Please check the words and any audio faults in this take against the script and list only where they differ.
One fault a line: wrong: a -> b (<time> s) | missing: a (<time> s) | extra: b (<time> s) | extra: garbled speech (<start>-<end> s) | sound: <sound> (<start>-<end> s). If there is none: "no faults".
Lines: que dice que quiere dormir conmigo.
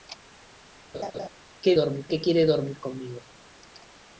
sound: laugh (0.9-1.3 s)
wrong: dice -> dormir (1.7 s)